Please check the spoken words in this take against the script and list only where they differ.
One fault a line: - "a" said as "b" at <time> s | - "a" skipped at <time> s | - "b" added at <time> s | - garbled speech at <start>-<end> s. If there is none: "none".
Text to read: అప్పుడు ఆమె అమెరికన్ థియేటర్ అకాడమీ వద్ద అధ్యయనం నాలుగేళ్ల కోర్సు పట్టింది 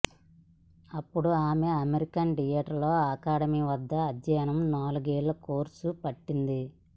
none